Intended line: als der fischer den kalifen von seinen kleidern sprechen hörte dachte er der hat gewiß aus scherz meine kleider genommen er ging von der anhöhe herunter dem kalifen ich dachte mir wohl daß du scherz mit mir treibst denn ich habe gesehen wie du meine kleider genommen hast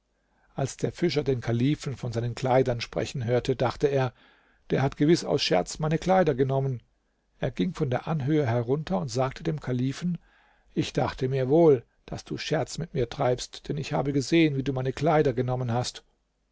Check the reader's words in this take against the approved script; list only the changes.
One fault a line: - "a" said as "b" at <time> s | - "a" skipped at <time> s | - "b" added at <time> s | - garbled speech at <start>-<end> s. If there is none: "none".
- "und sagte" added at 9.0 s